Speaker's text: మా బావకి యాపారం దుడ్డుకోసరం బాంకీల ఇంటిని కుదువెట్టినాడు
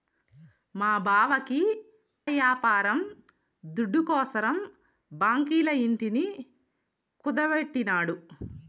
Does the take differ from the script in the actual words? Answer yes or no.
no